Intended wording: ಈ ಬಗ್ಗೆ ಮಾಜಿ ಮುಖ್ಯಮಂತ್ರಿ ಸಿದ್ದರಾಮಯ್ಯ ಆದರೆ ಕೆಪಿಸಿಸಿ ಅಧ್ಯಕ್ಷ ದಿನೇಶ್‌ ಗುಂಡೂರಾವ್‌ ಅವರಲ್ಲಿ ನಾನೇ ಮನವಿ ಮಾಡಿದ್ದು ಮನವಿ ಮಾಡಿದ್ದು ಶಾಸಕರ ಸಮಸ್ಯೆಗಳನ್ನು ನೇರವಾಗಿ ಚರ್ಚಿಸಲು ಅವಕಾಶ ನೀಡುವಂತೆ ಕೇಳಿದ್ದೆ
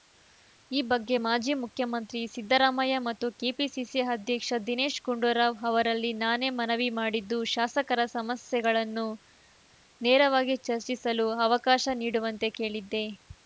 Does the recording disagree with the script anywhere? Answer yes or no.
yes